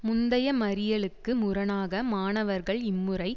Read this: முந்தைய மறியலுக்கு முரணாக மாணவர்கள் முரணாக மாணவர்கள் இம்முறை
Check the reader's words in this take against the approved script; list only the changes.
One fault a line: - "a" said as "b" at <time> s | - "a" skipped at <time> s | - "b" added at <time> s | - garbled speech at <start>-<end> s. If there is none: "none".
- "முரணாக மாணவர்கள்" skipped at 2.8 s